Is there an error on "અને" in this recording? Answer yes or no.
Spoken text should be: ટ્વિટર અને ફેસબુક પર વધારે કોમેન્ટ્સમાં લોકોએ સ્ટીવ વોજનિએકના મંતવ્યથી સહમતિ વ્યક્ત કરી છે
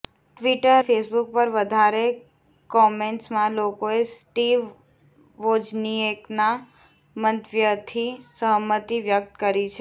yes